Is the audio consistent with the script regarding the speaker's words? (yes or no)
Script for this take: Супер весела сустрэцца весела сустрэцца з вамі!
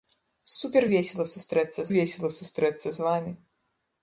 yes